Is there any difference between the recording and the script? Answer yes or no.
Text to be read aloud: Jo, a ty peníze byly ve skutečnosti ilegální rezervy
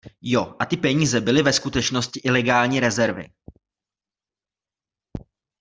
no